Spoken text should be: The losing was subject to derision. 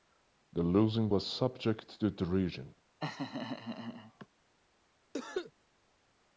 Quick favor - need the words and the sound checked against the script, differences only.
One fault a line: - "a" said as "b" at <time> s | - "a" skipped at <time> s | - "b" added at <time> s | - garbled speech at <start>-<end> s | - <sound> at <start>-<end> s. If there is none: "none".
- laugh at 3.0-4.3 s
- cough at 5.1-5.5 s